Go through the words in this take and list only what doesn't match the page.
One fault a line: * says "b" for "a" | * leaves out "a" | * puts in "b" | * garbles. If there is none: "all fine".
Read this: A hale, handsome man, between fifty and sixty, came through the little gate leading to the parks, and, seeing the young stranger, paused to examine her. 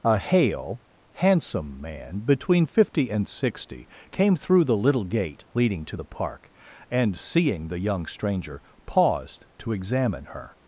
* says "park" for "parks"